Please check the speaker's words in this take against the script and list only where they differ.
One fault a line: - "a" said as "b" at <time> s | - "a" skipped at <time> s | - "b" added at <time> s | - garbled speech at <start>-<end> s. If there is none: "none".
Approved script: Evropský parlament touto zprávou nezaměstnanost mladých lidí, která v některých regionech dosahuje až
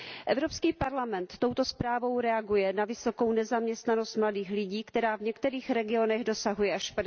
- "reaguje na vysokou" added at 2.2 s